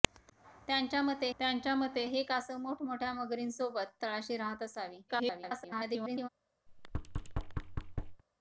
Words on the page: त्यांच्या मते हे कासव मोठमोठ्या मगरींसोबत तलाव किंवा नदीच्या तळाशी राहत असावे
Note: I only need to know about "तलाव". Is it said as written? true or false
false